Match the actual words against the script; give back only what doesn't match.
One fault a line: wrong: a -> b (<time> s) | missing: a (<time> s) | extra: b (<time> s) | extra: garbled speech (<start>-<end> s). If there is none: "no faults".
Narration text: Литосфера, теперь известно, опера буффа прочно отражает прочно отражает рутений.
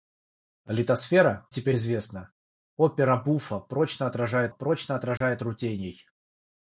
no faults